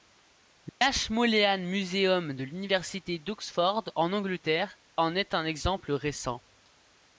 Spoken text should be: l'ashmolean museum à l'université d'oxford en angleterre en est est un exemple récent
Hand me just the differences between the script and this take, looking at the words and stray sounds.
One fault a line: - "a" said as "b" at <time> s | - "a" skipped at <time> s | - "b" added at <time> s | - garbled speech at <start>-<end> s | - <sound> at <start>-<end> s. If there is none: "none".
- dropout at 0.7-0.8 s
- "à" said as "de" at 2.3 s
- "est" skipped at 5.3 s